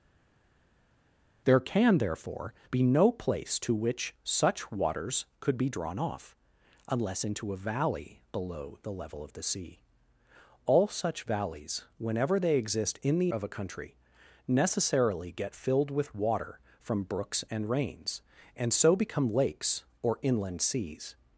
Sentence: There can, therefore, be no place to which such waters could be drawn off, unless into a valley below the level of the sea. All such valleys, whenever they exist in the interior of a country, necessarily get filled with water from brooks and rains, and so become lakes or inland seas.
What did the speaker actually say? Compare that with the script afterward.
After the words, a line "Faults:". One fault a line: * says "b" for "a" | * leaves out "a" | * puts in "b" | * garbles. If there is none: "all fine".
There can, therefore, be no place to which such waters could be drawn off, unless into a valley below the level of the sea. All such valleys, whenever they exist in the of a country, necessarily get filled with water from brooks and rains, and so become lakes or inland seas.
Faults:
* leaves out "interior"